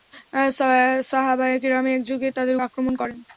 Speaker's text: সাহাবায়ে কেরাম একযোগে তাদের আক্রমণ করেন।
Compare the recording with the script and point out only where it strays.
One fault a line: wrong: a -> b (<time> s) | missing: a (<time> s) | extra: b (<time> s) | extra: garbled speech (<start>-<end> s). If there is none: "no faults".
no faults